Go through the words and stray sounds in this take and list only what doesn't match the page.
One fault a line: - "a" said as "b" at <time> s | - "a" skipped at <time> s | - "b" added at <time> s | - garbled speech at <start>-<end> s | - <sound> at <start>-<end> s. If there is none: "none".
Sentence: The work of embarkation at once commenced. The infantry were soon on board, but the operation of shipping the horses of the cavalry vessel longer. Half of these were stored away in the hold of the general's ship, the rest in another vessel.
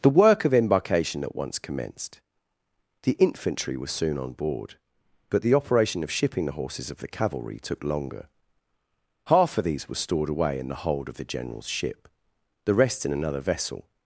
- "vessel" said as "took" at 7.6 s